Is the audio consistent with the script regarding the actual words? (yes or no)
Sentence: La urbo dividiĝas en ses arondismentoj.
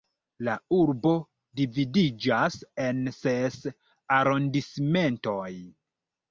yes